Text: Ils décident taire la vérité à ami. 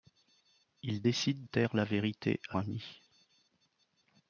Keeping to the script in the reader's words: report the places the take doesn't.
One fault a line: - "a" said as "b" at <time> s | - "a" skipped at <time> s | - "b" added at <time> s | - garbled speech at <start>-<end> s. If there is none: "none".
none